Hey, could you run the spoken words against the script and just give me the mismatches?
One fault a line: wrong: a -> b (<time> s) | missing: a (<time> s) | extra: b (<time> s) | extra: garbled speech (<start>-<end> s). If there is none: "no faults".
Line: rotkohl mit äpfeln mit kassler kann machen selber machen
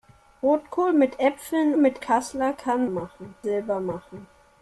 no faults